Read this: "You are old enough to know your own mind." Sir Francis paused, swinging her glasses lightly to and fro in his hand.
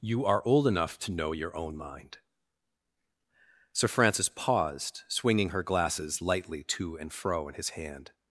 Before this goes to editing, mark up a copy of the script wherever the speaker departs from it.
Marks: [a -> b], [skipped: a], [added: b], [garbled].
"You are old enough to know your own mind." Sir Francis paused, swinging her glasses lightly to and fro in his hand.